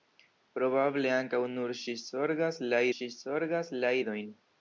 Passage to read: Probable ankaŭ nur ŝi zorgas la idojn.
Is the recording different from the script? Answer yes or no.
yes